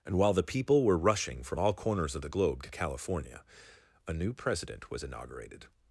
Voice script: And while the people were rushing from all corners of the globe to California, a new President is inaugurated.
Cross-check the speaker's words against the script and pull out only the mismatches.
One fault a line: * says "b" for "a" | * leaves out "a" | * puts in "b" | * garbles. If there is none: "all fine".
* says "was" for "is"